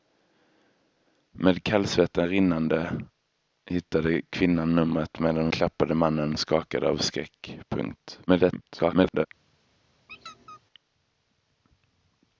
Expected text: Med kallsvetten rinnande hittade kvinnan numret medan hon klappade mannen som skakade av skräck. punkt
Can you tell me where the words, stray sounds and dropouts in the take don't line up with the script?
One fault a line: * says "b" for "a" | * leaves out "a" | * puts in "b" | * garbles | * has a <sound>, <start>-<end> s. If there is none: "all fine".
* leaves out "hon"
* leaves out "som"
* garbles
* has a squeak, 10.1-10.6 s